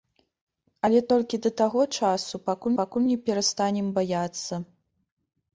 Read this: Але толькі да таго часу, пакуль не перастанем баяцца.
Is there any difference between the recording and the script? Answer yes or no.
yes